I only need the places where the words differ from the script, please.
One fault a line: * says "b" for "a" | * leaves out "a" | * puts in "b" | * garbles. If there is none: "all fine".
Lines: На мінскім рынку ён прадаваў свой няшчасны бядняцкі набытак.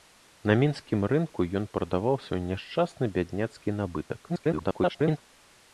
* garbles